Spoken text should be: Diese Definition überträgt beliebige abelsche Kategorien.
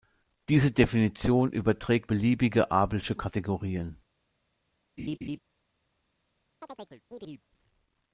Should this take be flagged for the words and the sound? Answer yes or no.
yes